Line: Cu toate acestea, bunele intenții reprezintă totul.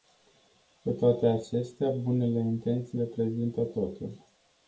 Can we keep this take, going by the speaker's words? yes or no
yes